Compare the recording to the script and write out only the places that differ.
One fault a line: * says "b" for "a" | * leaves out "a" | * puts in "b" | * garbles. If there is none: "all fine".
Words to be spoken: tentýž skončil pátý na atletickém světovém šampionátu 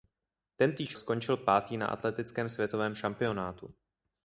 all fine